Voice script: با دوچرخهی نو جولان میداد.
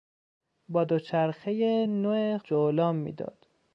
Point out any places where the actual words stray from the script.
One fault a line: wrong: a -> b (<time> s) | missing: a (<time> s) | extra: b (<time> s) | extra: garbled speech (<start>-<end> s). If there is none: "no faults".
no faults